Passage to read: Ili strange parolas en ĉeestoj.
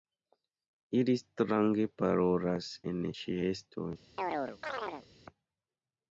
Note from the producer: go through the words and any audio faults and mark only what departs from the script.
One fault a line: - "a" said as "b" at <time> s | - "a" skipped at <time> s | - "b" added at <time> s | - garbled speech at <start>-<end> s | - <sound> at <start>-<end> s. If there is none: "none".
- chirp at 4.2-5.1 s